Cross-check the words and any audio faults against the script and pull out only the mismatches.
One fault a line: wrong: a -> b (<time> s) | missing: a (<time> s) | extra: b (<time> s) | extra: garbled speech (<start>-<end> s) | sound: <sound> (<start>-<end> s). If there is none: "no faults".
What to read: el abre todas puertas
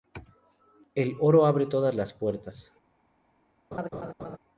extra: oro (1.2 s)
extra: las (1.9 s)
sound: laugh (3.7-4.4 s)